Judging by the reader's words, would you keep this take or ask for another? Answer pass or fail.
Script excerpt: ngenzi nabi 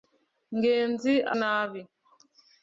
pass